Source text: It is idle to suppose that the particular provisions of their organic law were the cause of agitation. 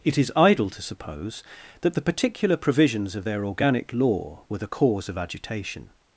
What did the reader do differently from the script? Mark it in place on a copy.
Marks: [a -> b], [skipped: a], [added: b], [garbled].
It is idle to suppose that the particular provisions of their organic law were the cause of agitation.